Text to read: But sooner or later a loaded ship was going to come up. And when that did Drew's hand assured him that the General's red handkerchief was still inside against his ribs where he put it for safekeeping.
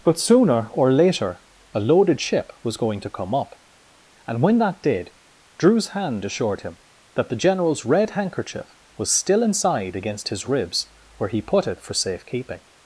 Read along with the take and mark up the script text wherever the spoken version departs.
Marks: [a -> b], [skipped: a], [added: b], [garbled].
But sooner or later a loaded ship was going to come up. And when that did Drew's hand assured him that the General's red handkerchief was still inside against his ribs where he put it for safekeeping.